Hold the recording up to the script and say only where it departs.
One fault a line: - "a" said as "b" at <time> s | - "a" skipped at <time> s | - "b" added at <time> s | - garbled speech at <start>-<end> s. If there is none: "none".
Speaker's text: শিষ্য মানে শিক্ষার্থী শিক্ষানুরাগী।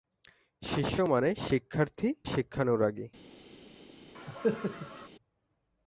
none